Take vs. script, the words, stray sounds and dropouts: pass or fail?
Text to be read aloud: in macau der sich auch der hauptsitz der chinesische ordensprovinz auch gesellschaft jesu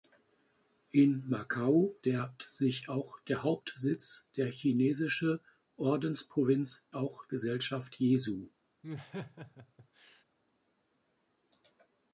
fail